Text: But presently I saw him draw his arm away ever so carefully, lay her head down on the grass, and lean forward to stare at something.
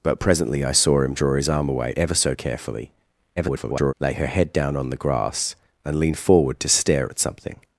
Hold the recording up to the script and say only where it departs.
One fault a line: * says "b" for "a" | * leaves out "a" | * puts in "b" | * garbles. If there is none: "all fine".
* garbles